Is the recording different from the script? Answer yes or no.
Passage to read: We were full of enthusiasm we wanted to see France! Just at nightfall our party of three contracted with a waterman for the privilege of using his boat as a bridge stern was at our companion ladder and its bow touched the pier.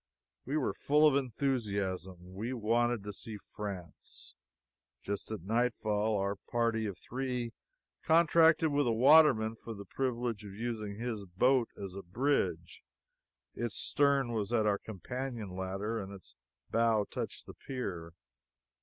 yes